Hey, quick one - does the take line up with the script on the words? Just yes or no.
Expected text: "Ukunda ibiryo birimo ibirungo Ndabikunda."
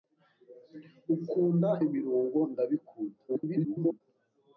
no